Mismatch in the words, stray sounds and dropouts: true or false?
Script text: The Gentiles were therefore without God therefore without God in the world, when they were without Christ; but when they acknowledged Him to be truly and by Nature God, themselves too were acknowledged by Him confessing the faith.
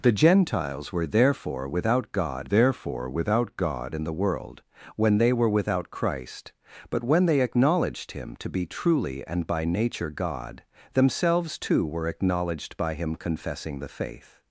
false